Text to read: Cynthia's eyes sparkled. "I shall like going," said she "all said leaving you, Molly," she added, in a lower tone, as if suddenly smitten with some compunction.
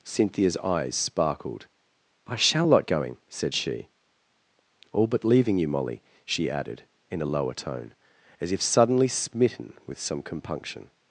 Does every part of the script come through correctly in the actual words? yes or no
no